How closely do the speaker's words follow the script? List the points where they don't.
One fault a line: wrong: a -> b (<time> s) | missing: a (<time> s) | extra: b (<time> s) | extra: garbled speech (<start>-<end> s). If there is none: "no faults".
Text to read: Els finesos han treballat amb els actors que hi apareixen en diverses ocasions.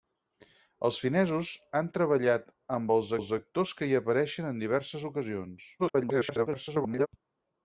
extra: els (3.2 s)
extra: garbled speech (5.8-7.1 s)